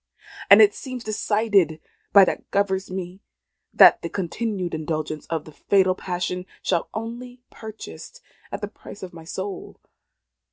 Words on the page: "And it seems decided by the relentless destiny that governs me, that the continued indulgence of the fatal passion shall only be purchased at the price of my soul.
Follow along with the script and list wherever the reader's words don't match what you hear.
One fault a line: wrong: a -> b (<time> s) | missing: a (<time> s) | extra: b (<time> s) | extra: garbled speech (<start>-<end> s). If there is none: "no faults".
missing: the relentless destiny (2.2 s)
missing: be (7.4 s)